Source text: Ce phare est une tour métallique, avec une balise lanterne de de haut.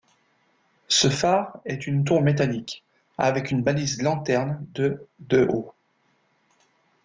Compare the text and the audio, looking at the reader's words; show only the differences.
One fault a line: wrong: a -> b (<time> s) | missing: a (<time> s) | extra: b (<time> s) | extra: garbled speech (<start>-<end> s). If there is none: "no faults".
no faults